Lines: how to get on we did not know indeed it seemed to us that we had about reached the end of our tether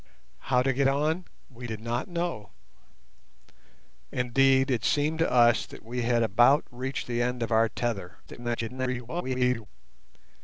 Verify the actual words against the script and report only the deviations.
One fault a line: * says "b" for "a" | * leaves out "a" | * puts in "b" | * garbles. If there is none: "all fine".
* garbles